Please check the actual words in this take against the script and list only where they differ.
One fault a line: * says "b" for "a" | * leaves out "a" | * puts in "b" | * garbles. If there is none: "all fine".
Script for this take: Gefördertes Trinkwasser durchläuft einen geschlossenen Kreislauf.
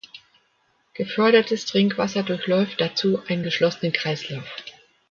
* puts in "dazu"